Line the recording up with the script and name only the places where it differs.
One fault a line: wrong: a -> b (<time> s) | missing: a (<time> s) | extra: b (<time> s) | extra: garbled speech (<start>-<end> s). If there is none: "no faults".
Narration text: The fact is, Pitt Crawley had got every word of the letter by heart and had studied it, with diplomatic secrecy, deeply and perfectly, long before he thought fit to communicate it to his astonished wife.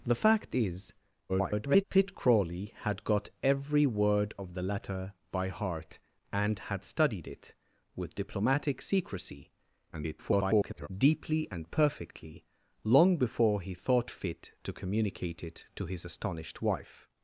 extra: garbled speech (1.3-1.8 s)
extra: garbled speech (9.9-10.9 s)